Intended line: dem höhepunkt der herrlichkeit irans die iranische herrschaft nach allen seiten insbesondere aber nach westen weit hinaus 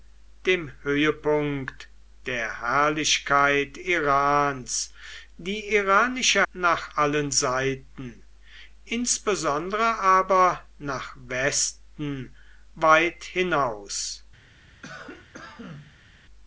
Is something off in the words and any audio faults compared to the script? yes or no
yes